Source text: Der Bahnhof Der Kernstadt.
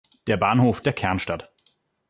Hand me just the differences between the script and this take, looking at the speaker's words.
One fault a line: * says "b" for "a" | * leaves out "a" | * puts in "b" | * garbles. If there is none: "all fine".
all fine